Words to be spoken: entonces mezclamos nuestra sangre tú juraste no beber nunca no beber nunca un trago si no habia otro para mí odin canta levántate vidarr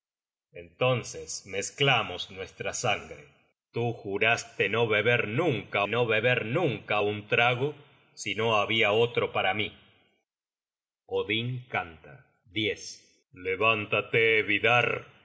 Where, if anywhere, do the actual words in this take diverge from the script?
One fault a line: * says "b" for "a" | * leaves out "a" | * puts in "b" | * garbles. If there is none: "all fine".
all fine